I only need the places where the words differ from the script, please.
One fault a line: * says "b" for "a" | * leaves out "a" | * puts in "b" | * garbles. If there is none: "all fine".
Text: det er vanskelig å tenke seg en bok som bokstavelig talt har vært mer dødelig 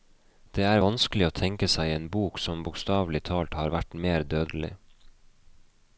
all fine